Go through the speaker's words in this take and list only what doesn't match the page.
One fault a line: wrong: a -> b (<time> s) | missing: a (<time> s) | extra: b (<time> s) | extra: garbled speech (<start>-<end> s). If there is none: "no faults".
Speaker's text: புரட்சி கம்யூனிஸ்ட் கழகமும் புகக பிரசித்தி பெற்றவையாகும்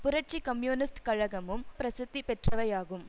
missing: புகக (1.6 s)